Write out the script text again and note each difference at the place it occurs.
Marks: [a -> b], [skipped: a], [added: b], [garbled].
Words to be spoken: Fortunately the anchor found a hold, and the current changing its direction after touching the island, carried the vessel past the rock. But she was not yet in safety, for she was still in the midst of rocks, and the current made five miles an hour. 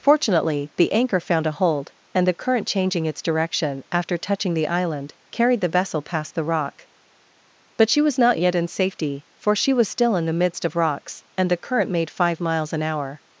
Fortunately the anchor found a hold, and the current changing its direction after touching the island, carried the vessel past the rock. But she was not yet in safety, for she was still in the midst of rocks, and the current made five miles an hour.